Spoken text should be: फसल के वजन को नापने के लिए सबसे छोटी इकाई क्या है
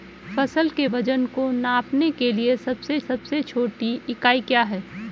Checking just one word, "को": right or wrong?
right